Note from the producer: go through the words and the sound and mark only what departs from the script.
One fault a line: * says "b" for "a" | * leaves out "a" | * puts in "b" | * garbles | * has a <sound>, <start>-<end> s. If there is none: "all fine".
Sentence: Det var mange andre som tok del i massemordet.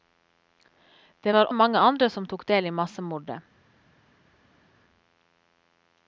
all fine